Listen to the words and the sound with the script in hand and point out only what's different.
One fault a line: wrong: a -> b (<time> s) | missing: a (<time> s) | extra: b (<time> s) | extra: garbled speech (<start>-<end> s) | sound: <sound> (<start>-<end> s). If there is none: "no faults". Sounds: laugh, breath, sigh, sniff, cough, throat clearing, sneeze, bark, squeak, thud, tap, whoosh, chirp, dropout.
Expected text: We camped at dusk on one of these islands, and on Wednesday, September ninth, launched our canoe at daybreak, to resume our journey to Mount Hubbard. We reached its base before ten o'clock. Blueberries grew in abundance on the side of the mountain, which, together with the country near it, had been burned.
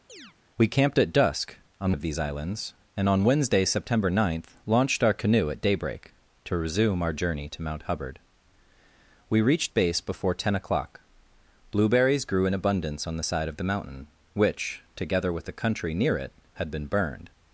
sound: chirp (0.1-0.4 s)
missing: one (1.9 s)
missing: its (9.7 s)